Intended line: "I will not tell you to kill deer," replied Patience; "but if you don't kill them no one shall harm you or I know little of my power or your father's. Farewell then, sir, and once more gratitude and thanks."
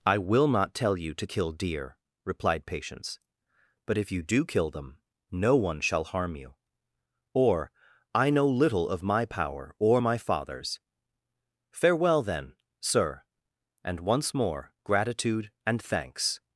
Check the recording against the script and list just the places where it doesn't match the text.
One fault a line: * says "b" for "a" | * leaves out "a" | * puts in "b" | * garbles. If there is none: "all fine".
* says "do" for "don't"
* says "my" for "your"